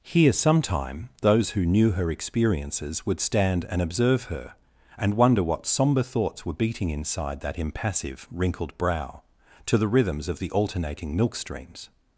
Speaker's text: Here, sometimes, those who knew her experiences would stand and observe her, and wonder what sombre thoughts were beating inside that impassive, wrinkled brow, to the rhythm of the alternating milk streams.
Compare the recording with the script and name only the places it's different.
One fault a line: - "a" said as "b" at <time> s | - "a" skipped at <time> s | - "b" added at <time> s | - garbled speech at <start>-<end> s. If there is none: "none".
- "sometimes" said as "sometime" at 0.3 s
- "rhythm" said as "rhythms" at 9.9 s